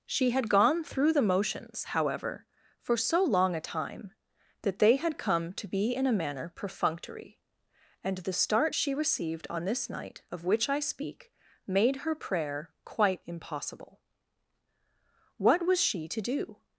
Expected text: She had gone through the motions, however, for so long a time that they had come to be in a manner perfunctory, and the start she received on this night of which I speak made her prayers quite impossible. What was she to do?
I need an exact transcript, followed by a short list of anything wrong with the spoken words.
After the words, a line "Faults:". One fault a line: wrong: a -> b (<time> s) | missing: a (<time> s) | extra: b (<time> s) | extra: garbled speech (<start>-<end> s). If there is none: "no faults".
She had gone through the motions, however, for so long a time that they had come to be in a manner perfunctory, and the start she received on this night of which I speak made her prayer quite impossible. What was she to do?
Faults:
wrong: prayers -> prayer (12.1 s)